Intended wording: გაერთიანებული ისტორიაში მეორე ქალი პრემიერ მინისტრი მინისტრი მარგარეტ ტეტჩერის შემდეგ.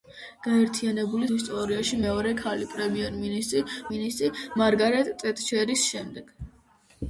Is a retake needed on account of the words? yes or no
no